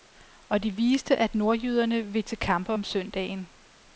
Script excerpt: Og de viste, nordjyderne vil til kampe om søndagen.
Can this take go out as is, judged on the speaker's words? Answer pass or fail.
fail